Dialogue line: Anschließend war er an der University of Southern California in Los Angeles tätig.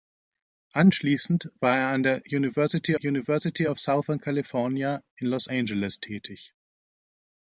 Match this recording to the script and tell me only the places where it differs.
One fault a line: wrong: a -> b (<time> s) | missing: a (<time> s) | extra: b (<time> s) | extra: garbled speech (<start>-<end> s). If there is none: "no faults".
extra: University (3.0 s)